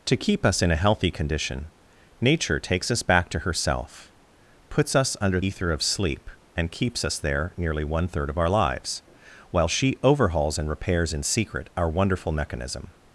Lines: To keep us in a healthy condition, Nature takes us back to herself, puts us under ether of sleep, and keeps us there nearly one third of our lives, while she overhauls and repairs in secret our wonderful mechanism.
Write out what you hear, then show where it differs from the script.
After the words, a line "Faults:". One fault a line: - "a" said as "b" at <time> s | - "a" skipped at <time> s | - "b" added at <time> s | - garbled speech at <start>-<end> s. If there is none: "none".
To keep us in a healthy condition, Nature takes us back to herself, puts us under ether of sleep, and keeps us there nearly one third of our lives, while she overhauls and repairs in secret our wonderful mechanism.
Faults:
none